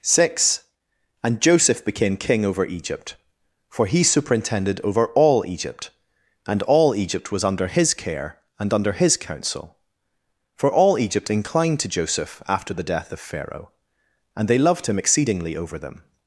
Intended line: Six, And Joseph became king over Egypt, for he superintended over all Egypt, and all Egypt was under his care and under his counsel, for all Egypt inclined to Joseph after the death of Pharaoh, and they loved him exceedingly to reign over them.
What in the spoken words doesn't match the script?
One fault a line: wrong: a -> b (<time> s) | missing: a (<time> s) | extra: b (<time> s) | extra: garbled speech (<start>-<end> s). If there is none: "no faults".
missing: to reign (15.6 s)